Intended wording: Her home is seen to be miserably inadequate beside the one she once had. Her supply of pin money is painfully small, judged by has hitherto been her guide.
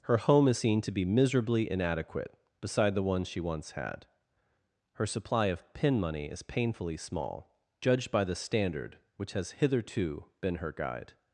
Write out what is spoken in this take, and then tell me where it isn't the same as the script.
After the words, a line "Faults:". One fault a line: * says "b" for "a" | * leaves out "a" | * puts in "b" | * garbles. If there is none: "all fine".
Her home is seen to be miserably inadequate beside the one she once had. Her supply of pin money is painfully small, judged by the standard which has hitherto been her guide.
Faults:
* puts in "the standard which"